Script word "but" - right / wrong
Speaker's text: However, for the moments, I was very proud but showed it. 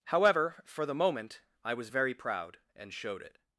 wrong